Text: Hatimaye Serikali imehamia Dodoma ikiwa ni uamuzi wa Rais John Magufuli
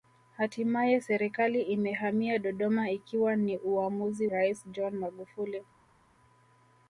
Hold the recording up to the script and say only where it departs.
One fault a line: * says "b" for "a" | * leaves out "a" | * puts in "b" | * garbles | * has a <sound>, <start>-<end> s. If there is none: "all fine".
* leaves out "wa"